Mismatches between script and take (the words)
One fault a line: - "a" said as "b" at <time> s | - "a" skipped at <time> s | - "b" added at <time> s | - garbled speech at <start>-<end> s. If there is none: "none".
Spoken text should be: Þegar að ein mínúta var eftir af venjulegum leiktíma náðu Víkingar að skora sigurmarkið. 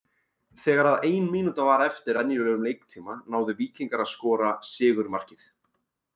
- "af" skipped at 2.2 s